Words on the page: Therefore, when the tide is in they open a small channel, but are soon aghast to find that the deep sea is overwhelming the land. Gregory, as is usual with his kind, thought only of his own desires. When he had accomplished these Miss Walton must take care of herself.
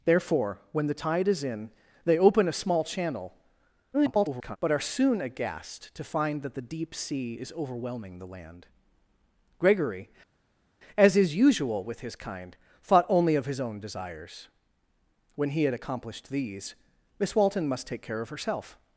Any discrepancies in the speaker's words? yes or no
yes